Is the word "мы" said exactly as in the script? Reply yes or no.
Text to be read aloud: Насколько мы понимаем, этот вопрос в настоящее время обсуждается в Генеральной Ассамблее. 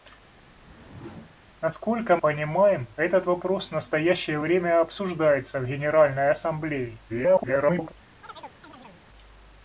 no